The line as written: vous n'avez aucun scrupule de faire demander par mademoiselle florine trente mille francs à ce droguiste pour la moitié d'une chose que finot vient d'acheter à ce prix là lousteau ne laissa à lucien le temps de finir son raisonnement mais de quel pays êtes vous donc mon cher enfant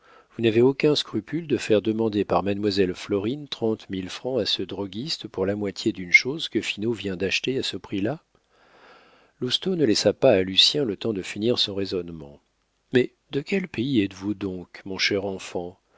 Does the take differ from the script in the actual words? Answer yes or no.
yes